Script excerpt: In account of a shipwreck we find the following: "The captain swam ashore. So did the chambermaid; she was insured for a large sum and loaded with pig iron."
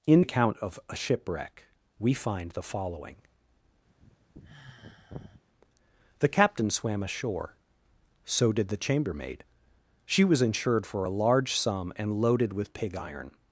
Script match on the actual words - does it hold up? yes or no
yes